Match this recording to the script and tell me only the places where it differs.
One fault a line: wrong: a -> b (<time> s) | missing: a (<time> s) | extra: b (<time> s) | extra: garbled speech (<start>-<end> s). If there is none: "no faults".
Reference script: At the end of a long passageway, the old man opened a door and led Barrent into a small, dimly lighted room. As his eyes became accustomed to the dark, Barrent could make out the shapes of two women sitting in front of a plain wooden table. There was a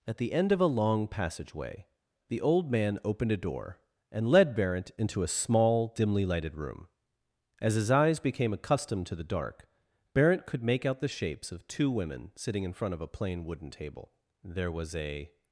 no faults